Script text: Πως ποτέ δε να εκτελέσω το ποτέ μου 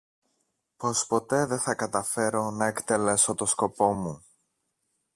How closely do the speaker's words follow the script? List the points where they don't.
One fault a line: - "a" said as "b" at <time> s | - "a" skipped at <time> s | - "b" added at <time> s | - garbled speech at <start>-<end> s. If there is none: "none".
- "θα καταφέρω" added at 1.6 s
- "ποτέ" said as "σκοπό" at 3.4 s